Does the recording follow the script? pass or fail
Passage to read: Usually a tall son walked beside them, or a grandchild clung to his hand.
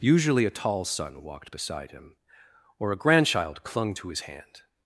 fail